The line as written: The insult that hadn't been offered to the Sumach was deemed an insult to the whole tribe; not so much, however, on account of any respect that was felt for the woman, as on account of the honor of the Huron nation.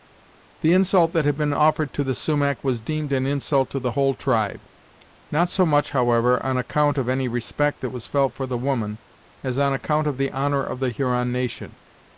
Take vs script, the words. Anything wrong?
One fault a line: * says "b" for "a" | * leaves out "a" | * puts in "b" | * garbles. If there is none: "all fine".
* says "had" for "hadn't"